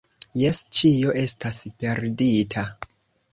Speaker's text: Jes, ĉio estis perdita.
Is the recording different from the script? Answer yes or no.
yes